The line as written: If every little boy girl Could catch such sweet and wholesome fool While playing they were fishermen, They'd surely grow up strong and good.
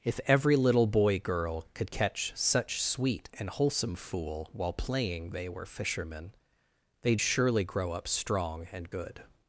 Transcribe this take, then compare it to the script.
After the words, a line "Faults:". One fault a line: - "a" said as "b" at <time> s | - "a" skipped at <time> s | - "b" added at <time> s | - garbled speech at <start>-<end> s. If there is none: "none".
If every little boy girl Could catch such sweet and wholesome fool While playing they were fishermen, They'd surely grow up strong and good.
Faults:
none